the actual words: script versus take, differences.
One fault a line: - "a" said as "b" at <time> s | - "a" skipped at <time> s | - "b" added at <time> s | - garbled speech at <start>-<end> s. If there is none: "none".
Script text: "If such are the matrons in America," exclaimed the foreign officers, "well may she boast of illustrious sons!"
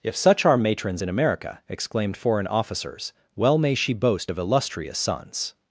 - "the" skipped at 0.6 s
- "the" skipped at 2.2 s